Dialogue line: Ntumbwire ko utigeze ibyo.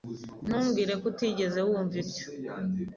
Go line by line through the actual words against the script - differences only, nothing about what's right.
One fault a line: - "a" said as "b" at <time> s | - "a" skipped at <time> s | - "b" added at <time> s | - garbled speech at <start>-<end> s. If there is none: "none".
- "wumva" added at 1.7 s